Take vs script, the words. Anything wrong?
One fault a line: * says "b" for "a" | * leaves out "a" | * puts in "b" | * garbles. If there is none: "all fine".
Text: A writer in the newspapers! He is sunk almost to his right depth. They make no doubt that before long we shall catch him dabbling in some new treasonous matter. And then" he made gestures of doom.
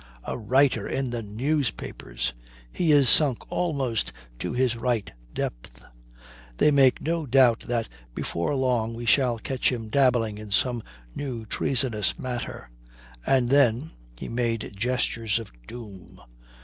all fine